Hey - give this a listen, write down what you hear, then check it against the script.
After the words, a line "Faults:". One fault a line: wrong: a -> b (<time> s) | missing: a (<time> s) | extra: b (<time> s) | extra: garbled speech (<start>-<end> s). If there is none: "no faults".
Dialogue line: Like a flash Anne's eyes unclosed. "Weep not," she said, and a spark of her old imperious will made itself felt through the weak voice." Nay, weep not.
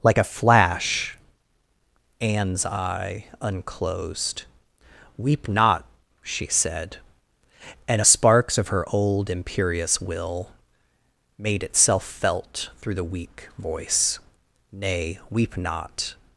Like a flash Anne's eye unclosed. "Weep not," she said, and a sparks of her old imperious will made itself felt through the weak voice." Nay, weep not.
Faults:
wrong: eyes -> eye (2.7 s)
wrong: spark -> sparks (8.0 s)